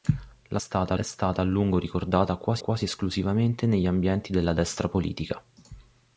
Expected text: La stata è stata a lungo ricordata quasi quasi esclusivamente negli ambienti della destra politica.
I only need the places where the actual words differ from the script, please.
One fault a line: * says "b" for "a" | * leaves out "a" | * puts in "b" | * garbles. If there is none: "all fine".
all fine